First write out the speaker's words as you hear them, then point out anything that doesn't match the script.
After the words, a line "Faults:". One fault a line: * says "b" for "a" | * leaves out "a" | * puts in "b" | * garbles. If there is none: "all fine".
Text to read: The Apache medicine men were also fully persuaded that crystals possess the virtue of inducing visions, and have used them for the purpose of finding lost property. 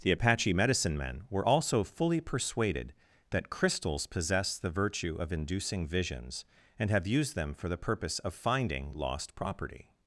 The Apache medicine men were also fully persuaded that crystals possess the virtue of inducing visions, and have used them for the purpose of finding lost property.
Faults:
all fine